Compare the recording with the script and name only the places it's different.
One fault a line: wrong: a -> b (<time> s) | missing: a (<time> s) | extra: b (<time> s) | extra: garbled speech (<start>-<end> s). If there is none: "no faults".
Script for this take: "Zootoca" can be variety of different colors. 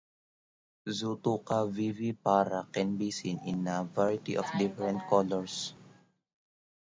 extra: vivipara (1.7 s)
extra: seen in a (3.1 s)